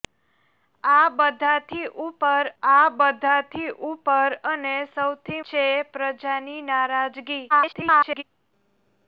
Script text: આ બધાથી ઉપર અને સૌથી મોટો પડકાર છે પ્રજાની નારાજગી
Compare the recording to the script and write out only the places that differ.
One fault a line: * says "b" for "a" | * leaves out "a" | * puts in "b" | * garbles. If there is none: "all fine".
* puts in "આ બધાથી ઉપર"
* leaves out "મોટો પડકાર"
* garbles